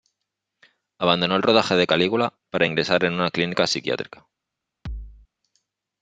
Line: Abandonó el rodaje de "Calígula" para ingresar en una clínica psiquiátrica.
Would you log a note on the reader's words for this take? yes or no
no